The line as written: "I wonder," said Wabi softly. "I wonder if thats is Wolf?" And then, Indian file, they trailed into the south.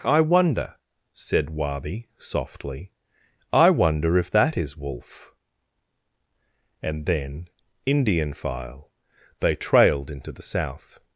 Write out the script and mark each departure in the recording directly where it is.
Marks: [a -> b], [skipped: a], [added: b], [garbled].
"I wonder," said Wabi softly. "I wonder if [thats -> that] is Wolf?" And then, Indian file, they trailed into the south.